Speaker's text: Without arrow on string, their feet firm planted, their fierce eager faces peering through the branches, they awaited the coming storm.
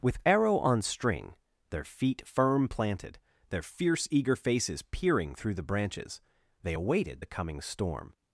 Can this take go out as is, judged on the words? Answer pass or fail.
fail